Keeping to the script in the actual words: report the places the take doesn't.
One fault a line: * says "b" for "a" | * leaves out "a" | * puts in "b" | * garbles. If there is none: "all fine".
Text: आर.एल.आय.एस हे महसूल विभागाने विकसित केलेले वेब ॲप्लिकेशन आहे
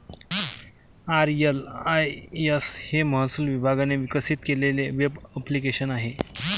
all fine